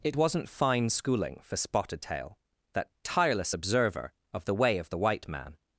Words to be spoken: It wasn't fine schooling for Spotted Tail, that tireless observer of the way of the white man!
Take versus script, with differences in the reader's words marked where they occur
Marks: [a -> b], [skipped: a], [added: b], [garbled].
It wasn't fine schooling for Spotted Tail, that tireless observer of the way of the white man!